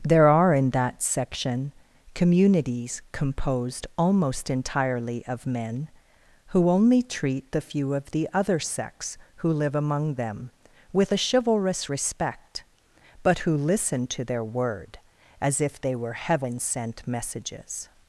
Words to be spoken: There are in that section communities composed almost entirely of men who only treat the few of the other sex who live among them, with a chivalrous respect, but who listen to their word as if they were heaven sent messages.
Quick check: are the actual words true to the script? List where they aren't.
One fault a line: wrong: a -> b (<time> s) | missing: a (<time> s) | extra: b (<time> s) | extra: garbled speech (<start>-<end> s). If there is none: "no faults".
no faults